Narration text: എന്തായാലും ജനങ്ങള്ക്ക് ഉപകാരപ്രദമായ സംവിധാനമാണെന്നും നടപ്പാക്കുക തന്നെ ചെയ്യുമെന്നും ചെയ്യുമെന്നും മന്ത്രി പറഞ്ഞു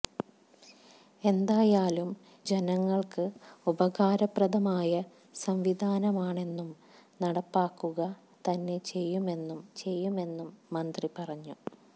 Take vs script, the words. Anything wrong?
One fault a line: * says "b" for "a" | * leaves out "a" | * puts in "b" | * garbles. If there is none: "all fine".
all fine